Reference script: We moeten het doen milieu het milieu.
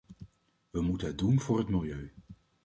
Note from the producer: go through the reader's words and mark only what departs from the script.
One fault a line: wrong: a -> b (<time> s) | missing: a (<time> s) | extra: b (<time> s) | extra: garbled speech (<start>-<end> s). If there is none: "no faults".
wrong: milieu -> voor (1.4 s)